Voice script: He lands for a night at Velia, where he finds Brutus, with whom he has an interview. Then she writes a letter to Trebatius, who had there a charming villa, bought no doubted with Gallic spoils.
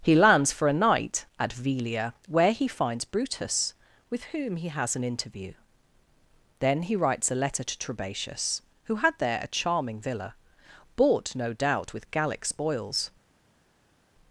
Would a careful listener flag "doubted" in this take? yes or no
yes